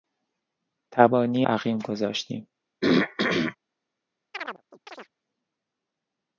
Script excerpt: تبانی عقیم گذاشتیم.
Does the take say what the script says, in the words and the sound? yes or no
no